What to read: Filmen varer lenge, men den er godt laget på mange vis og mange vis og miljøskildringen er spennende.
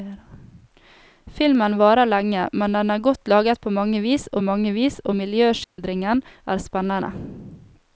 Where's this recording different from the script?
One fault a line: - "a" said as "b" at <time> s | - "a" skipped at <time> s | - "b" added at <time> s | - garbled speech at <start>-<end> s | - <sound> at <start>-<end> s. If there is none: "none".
- dropout at 5.6-5.8 s